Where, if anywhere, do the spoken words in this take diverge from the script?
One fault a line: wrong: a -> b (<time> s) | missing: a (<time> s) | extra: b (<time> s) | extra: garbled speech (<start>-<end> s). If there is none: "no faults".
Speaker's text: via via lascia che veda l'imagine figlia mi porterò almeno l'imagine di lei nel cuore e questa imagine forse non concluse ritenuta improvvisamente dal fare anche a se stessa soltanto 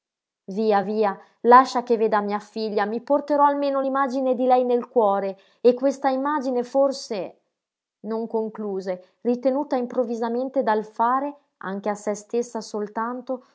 wrong: l'imagine -> mia (2.2 s)